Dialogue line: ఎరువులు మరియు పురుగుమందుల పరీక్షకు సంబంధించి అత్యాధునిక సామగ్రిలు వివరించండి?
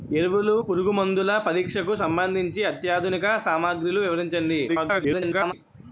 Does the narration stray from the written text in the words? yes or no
yes